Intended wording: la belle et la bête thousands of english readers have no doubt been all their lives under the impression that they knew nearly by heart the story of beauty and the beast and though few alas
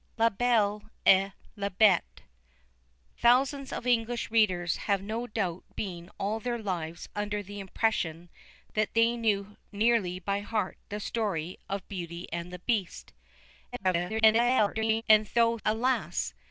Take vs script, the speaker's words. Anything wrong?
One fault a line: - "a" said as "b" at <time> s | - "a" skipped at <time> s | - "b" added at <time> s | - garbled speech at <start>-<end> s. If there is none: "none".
- garbled speech at 13.7-15.0 s
- "few" skipped at 15.6 s